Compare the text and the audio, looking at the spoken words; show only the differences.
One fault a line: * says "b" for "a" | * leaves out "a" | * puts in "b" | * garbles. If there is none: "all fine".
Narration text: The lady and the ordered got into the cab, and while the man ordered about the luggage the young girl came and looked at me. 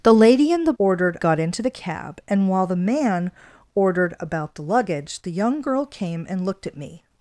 all fine